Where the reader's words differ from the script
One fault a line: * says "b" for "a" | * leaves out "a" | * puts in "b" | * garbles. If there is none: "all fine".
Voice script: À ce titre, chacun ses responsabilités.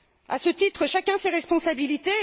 all fine